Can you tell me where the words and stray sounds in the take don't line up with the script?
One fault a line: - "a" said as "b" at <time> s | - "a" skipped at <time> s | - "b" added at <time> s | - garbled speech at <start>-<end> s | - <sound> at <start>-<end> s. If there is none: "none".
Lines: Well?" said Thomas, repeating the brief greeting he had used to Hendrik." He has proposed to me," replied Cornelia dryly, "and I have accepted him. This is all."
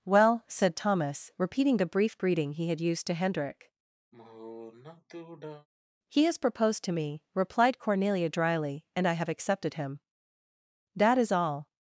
- sigh at 4.1-5.7 s
- "This" said as "That" at 10.9 s